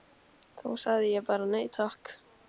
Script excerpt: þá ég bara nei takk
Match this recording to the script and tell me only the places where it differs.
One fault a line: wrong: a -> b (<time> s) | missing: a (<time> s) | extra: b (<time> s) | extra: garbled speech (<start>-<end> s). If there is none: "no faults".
extra: sagði (0.8 s)